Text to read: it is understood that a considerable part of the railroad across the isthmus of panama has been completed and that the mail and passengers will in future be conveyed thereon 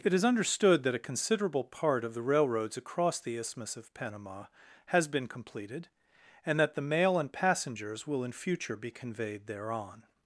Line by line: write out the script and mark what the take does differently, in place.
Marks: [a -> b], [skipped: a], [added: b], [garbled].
it is understood that a considerable part of the [railroad -> railroads] across the isthmus of panama has been completed and that the mail and passengers will in future be conveyed thereon